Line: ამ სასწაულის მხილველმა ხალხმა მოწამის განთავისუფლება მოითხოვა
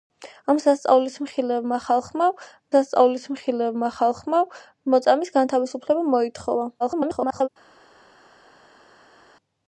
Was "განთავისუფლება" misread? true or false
false